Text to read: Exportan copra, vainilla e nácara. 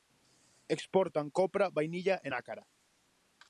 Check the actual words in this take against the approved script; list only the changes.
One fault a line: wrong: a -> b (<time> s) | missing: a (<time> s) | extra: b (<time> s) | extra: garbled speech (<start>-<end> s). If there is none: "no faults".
no faults